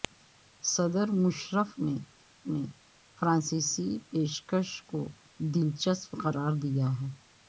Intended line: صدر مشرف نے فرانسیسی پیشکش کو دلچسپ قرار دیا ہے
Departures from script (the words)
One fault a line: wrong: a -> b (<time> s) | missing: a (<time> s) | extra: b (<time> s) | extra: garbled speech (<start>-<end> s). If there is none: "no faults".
extra: نے (2.5 s)